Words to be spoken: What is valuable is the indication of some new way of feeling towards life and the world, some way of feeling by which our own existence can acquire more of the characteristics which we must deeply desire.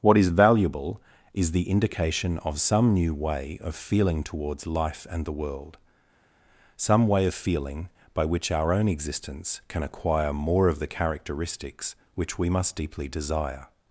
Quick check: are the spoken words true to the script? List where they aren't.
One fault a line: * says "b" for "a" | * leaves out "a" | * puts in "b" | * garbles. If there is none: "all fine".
all fine